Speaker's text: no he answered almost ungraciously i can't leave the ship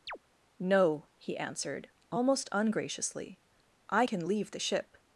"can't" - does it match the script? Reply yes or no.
no